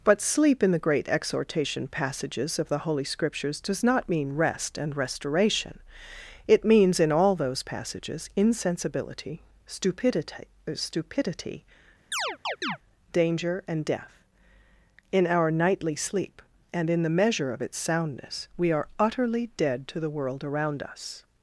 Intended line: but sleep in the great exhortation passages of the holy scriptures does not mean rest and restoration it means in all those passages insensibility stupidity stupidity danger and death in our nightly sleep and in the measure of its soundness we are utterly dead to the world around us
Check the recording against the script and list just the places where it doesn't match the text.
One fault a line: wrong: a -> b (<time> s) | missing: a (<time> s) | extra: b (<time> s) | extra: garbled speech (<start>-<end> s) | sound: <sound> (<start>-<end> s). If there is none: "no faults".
sound: chirp (12.1-12.8 s)